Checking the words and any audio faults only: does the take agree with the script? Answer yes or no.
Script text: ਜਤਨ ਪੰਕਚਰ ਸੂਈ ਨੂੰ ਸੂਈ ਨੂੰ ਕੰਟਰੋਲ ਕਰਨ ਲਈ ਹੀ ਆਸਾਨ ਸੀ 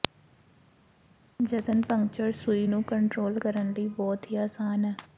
no